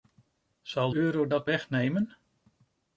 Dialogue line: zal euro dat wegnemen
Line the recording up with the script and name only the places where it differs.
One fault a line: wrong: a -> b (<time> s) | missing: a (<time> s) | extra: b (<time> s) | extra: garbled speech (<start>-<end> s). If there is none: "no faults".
no faults